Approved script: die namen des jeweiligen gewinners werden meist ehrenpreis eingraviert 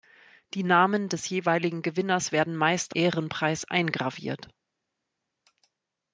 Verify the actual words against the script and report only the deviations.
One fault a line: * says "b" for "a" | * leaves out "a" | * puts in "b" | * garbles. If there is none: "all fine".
all fine